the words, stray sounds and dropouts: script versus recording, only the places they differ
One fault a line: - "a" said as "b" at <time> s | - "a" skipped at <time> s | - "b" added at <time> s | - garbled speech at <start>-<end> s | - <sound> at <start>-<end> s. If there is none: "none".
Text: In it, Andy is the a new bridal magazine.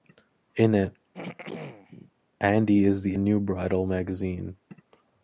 - throat clearing at 1.1-2.1 s